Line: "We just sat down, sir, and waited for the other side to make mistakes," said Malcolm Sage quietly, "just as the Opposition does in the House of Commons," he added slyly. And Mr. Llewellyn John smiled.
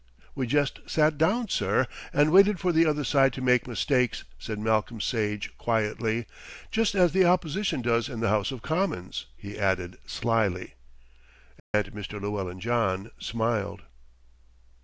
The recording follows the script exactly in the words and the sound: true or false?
false